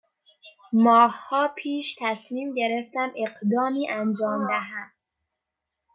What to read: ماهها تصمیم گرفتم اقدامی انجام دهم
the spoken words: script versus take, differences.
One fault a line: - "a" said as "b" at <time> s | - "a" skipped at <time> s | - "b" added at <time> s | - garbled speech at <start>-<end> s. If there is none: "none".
- "پیش" added at 1.5 s